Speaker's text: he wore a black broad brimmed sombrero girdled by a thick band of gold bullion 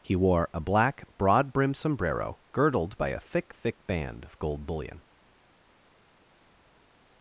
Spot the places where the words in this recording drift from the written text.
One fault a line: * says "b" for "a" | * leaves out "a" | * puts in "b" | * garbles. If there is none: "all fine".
* puts in "thick"